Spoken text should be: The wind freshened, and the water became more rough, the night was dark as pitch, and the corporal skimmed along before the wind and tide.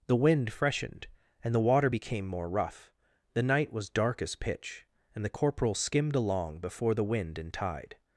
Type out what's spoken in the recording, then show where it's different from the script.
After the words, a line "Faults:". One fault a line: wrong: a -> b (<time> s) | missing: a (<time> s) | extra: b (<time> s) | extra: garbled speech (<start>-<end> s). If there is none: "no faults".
The wind freshened, and the water became more rough, the night was dark as pitch, and the corporal skimmed along before the wind and tide.
Faults:
no faults